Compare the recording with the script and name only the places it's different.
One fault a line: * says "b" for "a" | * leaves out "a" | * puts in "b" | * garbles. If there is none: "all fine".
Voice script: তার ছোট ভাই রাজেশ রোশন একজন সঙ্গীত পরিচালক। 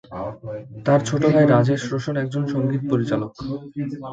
all fine